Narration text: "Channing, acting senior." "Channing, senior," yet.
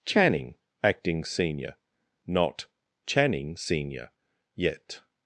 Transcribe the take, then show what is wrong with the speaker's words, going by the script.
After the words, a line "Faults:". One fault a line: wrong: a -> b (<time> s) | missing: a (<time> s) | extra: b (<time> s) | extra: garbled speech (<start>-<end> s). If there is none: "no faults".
"Channing, acting senior." Not "Channing, senior," yet.
Faults:
extra: Not (2.2 s)